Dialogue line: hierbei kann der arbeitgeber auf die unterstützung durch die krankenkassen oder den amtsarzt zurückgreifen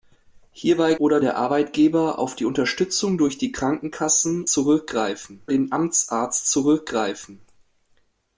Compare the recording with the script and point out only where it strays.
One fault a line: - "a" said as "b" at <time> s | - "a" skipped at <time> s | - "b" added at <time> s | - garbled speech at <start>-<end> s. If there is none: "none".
- "kann" said as "oder" at 0.9 s
- "oder" said as "zurückgreifen" at 4.5 s